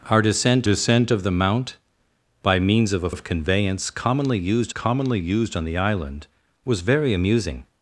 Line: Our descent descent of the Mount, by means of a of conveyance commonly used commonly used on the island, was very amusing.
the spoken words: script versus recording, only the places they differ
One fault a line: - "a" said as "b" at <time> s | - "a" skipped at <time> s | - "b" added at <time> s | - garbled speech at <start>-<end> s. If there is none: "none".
none